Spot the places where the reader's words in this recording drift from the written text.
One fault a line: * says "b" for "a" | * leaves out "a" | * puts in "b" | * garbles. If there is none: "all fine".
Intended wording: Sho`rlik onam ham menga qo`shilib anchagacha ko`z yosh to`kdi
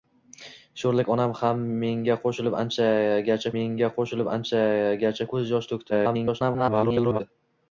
* puts in "menga qo`shilib anchagacha"
* garbles